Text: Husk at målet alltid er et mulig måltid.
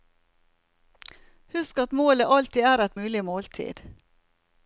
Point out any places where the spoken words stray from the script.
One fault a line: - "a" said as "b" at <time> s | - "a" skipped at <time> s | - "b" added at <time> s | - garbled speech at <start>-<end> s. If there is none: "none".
none